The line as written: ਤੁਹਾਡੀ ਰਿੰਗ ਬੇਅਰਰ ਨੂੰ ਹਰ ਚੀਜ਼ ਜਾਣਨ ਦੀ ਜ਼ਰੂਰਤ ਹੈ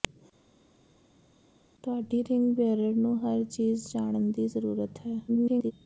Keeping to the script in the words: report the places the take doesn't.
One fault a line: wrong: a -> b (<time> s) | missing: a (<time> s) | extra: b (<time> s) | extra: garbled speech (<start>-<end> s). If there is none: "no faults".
extra: garbled speech (5.3-5.7 s)